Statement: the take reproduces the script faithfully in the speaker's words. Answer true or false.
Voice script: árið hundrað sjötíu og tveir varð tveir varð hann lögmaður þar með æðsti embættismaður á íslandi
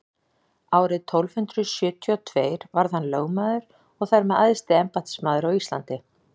false